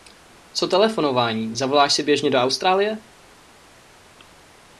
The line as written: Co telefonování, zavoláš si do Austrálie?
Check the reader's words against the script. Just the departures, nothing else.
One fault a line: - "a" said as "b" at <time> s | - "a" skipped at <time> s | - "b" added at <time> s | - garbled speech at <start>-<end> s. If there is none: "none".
- "běžně" added at 2.0 s